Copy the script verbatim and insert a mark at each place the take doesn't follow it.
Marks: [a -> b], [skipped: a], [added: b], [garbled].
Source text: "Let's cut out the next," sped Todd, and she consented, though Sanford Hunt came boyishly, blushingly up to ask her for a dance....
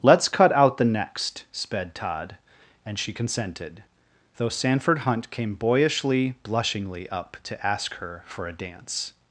"Let's cut out the next," sped Todd, and she consented, though Sanford Hunt came boyishly, blushingly up to ask her for a dance....